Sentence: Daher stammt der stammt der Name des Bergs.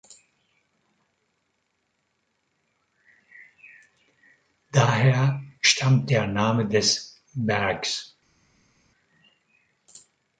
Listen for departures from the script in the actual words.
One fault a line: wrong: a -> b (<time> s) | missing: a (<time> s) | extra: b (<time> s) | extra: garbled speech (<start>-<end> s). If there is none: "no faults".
missing: stammt der (6.3 s)